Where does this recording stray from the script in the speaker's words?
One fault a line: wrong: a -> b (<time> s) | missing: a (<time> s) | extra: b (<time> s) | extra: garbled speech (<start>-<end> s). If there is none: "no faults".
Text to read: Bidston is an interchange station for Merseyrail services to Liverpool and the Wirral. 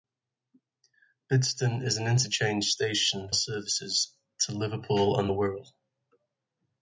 missing: for Merseyrail (3.3 s)